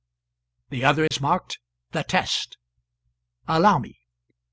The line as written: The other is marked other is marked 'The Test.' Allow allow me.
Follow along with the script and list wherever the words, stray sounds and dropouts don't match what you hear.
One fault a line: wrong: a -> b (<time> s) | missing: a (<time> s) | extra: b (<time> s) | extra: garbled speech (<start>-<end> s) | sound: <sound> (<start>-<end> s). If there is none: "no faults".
sound: dropout (1.1-1.1 s)
missing: other is marked (1.6 s)
missing: allow (3.8 s)